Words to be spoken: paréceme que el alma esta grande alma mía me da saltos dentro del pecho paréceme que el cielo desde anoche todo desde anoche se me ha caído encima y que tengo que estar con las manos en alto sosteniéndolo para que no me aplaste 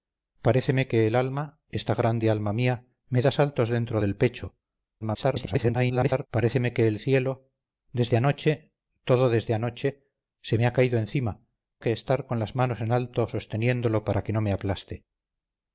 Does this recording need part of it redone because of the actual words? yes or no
yes